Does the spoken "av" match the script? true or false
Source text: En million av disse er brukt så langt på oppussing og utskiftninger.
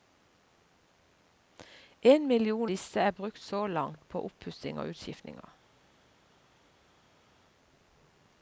false